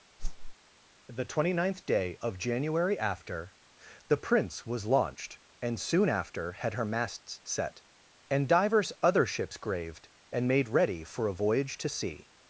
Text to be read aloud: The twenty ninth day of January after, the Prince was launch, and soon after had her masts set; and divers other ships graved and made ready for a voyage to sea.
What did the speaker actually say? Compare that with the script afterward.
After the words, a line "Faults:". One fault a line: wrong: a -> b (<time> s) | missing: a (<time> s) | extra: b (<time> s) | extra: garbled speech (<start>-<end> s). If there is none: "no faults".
The twenty ninth day of January after, the Prince was launched, and soon after had her masts set; and divers other ships graved and made ready for a voyage to sea.
Faults:
wrong: launch -> launched (4.9 s)